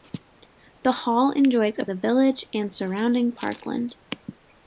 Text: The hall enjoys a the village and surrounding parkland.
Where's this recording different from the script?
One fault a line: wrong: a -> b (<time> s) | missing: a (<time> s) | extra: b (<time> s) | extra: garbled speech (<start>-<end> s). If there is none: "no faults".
no faults